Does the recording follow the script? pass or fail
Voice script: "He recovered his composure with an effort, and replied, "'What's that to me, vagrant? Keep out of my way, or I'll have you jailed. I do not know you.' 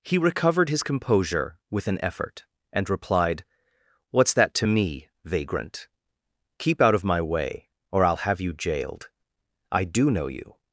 fail